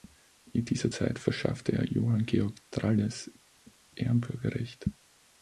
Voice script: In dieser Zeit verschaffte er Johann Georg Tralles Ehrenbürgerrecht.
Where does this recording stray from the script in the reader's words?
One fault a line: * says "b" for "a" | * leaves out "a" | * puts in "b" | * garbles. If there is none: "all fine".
all fine